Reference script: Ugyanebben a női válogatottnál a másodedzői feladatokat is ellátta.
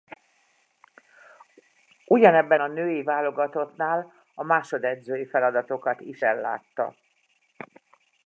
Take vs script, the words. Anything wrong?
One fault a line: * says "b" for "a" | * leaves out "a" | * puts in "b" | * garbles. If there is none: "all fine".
all fine